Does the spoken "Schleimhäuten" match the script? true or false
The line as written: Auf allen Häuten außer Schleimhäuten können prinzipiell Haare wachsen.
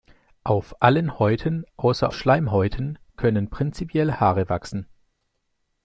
true